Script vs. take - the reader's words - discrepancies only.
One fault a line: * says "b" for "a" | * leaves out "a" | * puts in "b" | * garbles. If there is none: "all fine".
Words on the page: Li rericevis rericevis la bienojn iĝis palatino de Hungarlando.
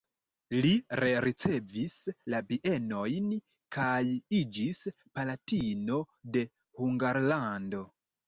* leaves out "rericevis"
* puts in "kaj"